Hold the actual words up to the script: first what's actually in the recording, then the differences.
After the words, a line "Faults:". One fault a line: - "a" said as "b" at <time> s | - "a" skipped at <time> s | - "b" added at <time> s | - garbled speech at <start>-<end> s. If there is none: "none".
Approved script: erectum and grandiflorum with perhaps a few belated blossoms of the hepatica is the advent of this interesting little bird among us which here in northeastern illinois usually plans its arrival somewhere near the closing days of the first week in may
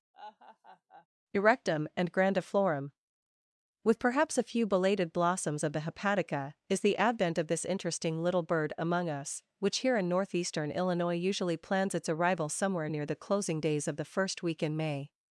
erectum and grandiflorum with perhaps a few belated blossoms of the hepatica is the advent of this interesting little bird among us which here in northeastern illinois usually plans its arrival somewhere near the closing days of the first week in may
Faults:
none